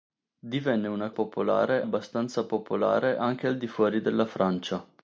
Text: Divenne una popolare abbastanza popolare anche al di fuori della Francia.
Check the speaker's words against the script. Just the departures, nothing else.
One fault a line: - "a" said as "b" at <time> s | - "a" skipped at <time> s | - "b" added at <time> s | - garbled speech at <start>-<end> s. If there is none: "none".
none